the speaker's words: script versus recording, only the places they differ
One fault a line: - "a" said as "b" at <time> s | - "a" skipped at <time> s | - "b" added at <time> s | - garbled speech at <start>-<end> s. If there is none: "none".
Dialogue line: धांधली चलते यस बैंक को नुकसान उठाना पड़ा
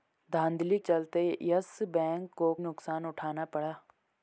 none